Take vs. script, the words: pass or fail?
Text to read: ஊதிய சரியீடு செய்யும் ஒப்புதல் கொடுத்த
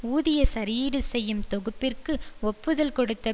fail